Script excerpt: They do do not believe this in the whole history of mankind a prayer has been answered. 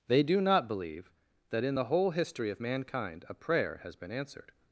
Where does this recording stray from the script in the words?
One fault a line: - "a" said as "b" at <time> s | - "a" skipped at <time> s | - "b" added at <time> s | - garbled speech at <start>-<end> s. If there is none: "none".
- "do" skipped at 0.4 s
- "this" said as "that" at 1.5 s